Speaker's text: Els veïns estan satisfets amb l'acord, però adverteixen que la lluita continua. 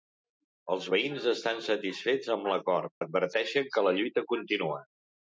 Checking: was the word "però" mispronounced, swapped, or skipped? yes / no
yes